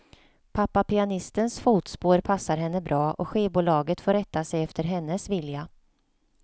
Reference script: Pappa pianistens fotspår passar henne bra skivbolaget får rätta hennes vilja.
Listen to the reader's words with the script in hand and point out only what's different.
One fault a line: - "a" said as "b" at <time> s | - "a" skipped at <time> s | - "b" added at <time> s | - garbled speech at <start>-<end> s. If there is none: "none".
- "och" added at 3.1 s
- "sig efter" added at 4.4 s